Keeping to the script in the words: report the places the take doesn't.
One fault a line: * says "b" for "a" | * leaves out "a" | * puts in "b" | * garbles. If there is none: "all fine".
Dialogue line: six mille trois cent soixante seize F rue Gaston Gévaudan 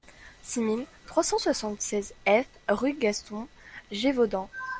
all fine